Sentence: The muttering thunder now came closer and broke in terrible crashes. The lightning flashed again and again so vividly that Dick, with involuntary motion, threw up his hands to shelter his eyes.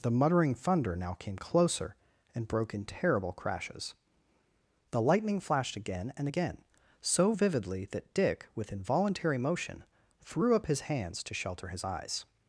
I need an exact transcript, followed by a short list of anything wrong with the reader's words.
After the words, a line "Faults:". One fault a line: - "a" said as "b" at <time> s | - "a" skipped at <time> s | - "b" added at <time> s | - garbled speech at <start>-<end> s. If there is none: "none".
The muttering thunder now came closer and broke in terrible crashes. The lightning flashed again and again so vividly that Dick, with involuntary motion, threw up his hands to shelter his eyes.
Faults:
none